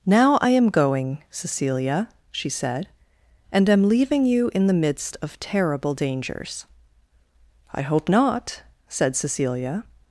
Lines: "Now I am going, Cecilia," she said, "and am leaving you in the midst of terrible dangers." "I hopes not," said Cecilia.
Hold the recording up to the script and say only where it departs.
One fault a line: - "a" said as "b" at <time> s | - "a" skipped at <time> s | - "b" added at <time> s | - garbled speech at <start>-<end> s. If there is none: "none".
- "hopes" said as "hope" at 7.8 s